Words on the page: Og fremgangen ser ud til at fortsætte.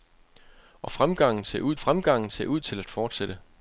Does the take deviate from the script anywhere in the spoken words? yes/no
yes